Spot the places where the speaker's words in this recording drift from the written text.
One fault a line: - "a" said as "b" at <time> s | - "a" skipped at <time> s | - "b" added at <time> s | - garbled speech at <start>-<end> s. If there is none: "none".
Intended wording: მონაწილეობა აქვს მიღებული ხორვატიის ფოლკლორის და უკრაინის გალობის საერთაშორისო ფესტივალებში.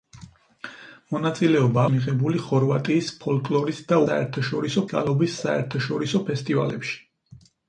- "აქვს" skipped at 1.8 s
- "უკრაინის" said as "საერთაშორისო" at 4.1 s